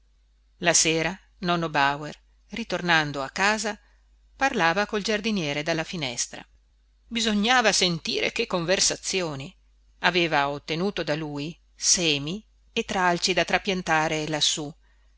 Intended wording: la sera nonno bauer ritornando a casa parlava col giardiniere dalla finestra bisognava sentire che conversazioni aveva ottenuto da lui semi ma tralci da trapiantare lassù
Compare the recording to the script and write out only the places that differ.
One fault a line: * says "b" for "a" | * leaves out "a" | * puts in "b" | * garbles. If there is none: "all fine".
* says "e" for "ma"